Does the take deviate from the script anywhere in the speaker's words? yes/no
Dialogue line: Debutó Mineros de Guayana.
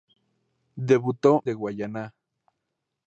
yes